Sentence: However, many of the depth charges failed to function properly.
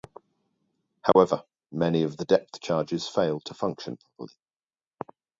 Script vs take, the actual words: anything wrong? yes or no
no